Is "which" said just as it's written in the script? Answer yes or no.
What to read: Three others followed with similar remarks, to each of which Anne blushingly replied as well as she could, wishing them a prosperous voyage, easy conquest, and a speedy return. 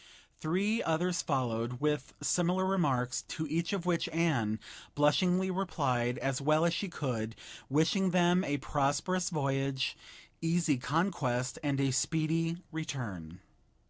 yes